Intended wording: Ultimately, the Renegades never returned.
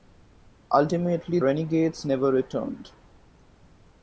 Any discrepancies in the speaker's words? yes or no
yes